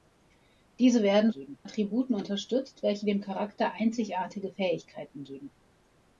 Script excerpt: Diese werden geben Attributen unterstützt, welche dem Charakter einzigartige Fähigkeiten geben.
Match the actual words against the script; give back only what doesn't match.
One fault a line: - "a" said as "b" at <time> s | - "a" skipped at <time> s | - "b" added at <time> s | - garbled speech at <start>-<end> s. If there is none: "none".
none